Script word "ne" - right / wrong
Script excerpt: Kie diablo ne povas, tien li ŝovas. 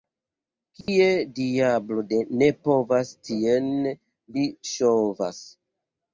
right